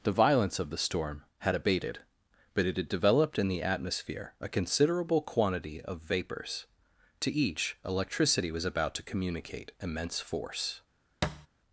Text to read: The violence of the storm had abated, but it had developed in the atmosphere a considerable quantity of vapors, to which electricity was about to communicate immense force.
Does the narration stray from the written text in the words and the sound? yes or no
yes